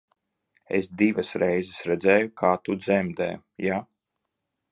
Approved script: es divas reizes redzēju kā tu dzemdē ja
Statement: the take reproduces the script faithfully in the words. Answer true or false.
true